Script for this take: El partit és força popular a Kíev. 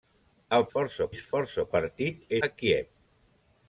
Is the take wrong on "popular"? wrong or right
wrong